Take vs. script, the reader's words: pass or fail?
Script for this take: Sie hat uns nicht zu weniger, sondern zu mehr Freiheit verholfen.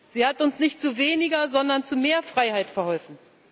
pass